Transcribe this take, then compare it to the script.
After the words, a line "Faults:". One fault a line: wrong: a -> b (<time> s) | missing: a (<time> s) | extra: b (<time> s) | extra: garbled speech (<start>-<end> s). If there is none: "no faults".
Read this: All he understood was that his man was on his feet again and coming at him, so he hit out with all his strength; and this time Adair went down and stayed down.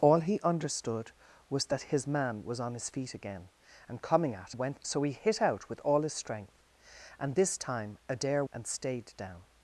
All he understood was that his man was on his feet again and coming at went, so he hit out with all his strength; and this time Adair and stayed down.
Faults:
wrong: him -> went (4.5 s)
missing: went down (8.4 s)